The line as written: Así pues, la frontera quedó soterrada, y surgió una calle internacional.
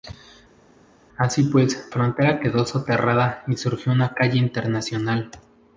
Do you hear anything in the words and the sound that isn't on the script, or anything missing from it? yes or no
yes